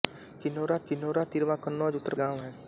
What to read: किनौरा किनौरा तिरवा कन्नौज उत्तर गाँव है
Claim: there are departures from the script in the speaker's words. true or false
false